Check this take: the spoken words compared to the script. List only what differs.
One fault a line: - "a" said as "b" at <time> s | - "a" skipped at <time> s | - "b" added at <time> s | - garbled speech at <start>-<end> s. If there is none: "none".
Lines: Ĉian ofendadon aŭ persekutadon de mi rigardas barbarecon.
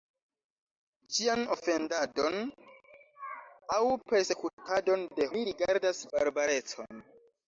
none